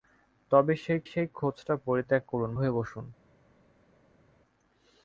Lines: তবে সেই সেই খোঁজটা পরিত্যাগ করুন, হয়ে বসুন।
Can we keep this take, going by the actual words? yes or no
yes